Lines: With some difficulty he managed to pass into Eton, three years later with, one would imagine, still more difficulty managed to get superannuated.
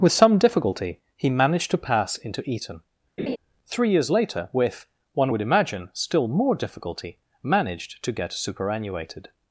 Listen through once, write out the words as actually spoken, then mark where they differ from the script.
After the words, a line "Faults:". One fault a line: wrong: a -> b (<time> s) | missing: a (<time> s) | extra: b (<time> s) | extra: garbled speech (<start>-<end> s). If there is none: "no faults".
With some difficulty he managed to pass into Eton, three years later with, one would imagine, still more difficulty managed to get superannuated.
Faults:
no faults